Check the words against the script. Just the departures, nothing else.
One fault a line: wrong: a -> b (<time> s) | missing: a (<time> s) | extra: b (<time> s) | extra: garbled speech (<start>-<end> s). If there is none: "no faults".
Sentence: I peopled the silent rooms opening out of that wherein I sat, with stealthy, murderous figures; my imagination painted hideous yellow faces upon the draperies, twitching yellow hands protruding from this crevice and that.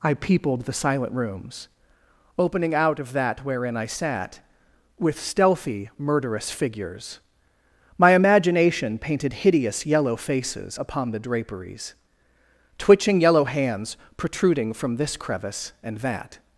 no faults